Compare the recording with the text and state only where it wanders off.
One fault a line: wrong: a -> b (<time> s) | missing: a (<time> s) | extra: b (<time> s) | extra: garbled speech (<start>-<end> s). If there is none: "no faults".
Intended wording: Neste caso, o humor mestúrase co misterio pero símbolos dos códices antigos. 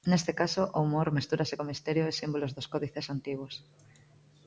wrong: pero -> e (2.1 s)